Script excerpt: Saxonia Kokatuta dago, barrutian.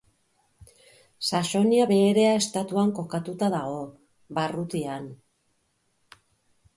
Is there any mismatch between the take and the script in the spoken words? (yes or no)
yes